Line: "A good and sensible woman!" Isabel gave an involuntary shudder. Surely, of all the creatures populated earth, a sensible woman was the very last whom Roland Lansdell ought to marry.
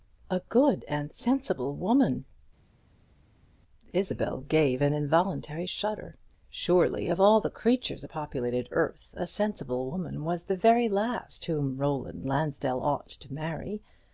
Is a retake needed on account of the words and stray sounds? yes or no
no